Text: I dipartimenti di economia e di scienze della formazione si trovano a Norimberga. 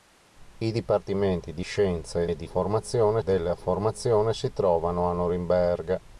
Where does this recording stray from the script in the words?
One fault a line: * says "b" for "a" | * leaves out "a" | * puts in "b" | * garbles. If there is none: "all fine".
* says "scienze" for "economia"
* says "formazione" for "scienze"